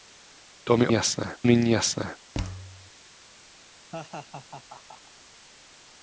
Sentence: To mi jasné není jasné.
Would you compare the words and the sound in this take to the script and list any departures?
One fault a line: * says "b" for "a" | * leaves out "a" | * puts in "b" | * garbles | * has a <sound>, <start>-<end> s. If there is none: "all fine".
* has a thud, 2.3-2.9 s
* has a laugh, 3.9-5.1 s